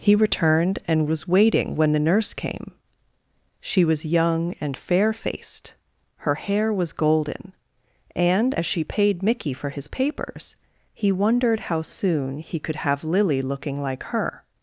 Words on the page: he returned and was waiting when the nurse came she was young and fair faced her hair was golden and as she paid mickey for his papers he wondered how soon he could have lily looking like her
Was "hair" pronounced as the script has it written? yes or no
yes